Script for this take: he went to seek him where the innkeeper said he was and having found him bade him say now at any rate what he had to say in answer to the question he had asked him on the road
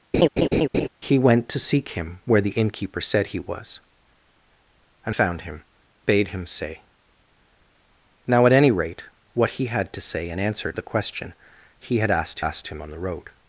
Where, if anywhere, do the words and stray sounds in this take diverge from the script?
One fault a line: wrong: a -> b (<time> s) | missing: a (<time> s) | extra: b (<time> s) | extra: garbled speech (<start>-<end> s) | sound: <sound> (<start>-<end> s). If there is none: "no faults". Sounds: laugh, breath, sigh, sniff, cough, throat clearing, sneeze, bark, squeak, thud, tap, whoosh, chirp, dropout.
sound: laugh (0.1-0.9 s)
missing: having (5.2 s)
missing: to (10.7 s)
extra: asked (12.4 s)